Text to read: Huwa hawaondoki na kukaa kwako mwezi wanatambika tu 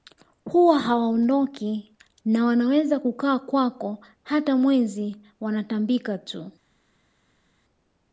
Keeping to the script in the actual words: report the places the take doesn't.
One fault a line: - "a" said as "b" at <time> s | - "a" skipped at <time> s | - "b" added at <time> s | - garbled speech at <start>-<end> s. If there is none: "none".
- "wanaweza" added at 2.4 s
- "hata" added at 4.2 s